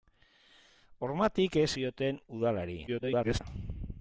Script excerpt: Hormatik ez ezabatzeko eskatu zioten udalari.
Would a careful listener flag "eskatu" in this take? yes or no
yes